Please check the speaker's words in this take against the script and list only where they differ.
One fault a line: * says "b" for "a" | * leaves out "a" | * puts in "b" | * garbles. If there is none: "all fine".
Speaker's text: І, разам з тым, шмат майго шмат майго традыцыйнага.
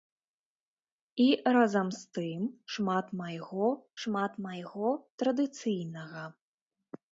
all fine